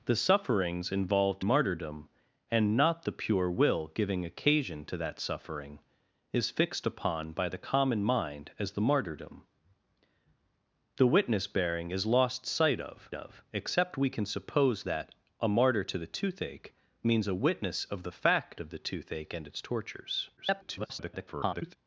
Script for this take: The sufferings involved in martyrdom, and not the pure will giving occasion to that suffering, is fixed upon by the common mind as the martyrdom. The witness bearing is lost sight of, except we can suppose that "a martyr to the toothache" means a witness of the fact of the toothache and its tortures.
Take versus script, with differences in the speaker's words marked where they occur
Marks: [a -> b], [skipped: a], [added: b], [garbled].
The sufferings involved [skipped: in] martyrdom, and not the pure will giving occasion to that suffering, is fixed upon by the common mind as the martyrdom. The witness bearing is lost sight of, [added: of] except we can suppose that "a martyr to the toothache" means a witness of the fact of the toothache and its tortures. [garbled]